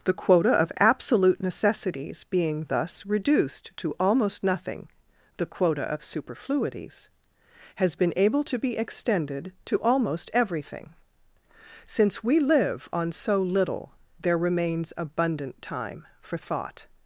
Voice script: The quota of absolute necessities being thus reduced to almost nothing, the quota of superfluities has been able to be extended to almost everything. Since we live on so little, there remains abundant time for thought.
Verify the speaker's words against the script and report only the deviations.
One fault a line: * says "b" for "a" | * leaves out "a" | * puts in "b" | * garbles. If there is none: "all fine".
all fine